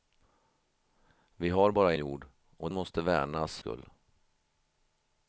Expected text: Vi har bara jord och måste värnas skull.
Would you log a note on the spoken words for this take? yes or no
no